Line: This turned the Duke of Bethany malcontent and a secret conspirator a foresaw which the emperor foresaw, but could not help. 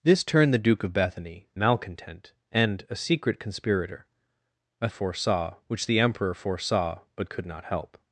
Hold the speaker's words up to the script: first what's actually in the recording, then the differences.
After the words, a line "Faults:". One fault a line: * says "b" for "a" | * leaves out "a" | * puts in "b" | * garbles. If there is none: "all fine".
This turned the Duke of Bethany malcontent and a secret conspirator a foresaw which the emperor foresaw, but could not help.
Faults:
all fine